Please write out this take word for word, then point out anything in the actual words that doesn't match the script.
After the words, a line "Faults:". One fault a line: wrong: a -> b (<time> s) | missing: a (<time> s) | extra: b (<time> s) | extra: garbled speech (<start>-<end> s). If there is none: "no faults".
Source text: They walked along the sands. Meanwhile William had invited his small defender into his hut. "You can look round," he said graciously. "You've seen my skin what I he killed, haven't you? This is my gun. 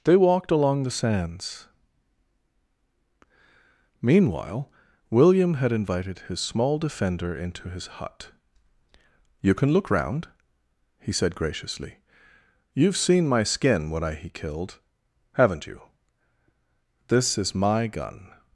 They walked along the sands. Meanwhile William had invited his small defender into his hut. "You can look round," he said graciously. "You've seen my skin when I he killed, haven't you? This is my gun.
Faults:
wrong: what -> when (13.9 s)